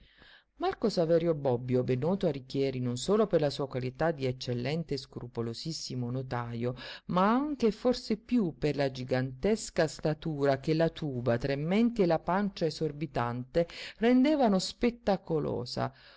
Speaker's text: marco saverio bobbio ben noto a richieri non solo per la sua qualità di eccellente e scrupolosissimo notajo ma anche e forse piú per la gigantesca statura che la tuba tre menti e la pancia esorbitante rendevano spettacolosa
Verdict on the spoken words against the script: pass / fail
pass